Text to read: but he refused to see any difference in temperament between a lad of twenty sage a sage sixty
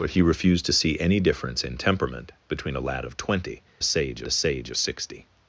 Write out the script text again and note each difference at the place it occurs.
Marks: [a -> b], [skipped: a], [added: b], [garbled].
but he refused to see any difference in temperament between a lad of twenty sage a sage sixty